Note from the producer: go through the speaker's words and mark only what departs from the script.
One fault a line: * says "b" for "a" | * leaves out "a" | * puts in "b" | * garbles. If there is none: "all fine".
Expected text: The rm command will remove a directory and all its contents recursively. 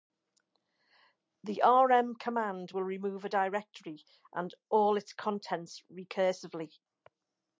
all fine